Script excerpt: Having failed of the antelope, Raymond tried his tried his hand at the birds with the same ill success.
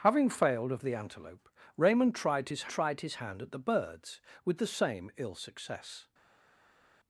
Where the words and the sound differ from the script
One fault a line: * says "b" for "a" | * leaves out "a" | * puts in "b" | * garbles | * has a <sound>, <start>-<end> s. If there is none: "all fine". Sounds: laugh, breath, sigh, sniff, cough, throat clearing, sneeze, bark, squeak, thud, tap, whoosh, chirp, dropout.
all fine